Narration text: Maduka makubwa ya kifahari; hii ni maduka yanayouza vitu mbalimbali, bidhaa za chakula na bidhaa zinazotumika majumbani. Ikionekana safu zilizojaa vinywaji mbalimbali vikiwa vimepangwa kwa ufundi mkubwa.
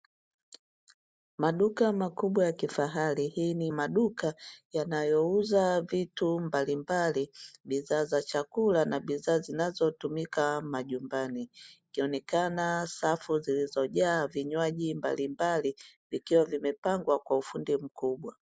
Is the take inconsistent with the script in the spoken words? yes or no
no